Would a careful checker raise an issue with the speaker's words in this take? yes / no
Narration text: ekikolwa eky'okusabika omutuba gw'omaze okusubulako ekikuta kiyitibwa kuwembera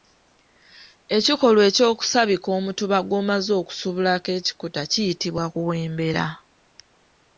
no